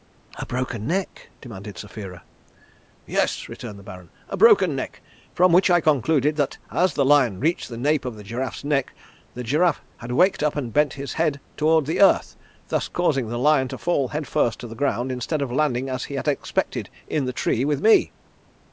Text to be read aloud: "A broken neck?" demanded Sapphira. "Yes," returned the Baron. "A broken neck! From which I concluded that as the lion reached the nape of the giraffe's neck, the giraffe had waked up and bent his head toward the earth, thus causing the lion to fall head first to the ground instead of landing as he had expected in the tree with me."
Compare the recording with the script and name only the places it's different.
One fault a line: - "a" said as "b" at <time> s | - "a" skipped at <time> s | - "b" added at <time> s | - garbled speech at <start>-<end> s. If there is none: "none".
none